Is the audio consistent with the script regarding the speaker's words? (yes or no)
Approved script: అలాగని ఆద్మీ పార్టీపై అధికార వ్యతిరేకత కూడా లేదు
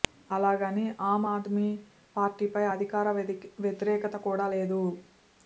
no